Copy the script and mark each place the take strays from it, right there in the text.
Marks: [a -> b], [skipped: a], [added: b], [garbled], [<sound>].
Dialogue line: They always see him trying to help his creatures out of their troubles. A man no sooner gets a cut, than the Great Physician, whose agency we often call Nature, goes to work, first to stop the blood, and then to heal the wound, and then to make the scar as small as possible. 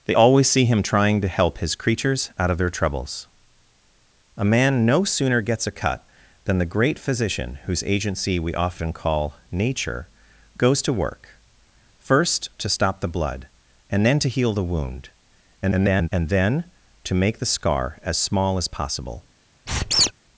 They always see him trying to help his creatures out of their troubles. A man no sooner gets a cut, than the Great Physician, whose agency we often call Nature, goes to work, first to stop the blood, and then to heal the wound, [garbled] and then to make the scar as small as possible. [squeak]